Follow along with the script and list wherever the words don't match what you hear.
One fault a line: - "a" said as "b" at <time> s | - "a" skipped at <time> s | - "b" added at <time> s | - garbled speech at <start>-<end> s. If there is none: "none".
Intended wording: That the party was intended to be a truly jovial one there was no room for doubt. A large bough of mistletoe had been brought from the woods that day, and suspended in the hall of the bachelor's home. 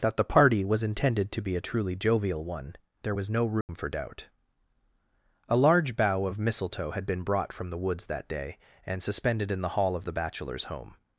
none